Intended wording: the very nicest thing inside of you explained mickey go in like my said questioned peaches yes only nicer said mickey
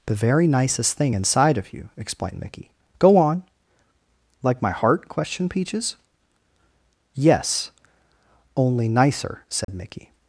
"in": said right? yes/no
no